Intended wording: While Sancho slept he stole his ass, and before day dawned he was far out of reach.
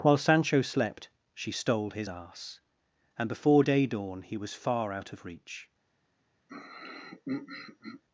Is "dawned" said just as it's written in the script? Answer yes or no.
no